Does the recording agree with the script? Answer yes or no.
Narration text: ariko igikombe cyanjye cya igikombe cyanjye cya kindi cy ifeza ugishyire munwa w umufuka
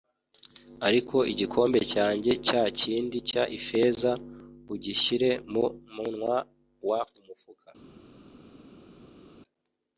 no